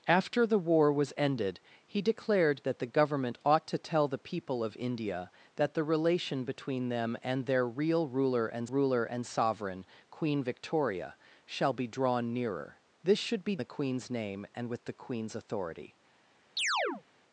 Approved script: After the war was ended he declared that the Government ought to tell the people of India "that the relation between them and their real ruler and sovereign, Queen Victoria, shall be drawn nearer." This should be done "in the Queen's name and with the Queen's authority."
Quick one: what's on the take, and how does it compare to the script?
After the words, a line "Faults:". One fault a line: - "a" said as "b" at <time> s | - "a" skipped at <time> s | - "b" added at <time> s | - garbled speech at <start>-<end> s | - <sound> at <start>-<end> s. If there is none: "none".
After the war was ended he declared that the Government ought to tell the people of India "that the relation between them and their real ruler and ruler and sovereign, Queen Victoria, shall be drawn nearer." This should be the Queen's name and with the Queen's authority."
Faults:
- "ruler and" added at 8.7 s
- "done in" skipped at 13.6 s
- chirp at 16.6-17.0 s